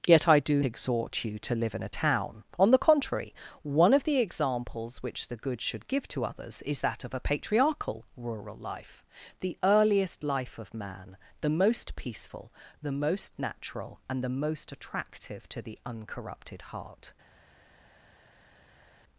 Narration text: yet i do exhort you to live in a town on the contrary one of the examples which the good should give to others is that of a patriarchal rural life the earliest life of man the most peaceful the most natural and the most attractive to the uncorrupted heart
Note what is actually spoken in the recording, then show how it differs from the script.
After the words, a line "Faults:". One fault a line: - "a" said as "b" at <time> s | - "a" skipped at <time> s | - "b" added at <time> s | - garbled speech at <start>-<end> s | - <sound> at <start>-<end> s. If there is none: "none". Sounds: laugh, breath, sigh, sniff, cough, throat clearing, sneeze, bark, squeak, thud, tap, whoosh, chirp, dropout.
yet i do exhort you to live in a town on the contrary one of the examples which the good should give to others is that of a patriarchal rural life the earliest life of man the most peaceful the most natural and the most attractive to the uncorrupted heart
Faults:
none